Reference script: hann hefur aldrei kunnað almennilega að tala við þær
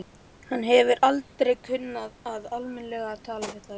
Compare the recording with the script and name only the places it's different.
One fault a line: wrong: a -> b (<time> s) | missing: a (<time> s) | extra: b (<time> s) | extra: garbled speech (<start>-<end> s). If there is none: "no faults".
no faults